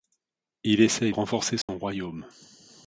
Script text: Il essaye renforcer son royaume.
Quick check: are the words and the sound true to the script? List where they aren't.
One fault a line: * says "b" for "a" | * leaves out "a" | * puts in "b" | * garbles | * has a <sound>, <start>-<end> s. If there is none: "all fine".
* has a dropout, 1.6-1.7 s